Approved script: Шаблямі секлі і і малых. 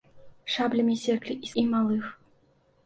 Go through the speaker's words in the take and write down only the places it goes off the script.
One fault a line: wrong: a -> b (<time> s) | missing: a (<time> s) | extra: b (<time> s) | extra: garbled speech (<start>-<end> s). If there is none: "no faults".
no faults